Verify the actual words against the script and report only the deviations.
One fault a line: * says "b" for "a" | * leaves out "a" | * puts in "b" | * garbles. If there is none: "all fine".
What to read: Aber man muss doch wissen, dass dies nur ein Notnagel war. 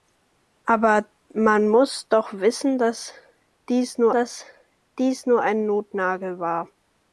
* puts in "dass dies nur"